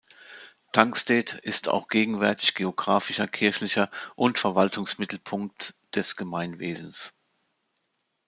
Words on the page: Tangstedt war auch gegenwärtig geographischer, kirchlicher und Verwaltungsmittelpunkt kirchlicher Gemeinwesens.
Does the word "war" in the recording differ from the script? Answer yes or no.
yes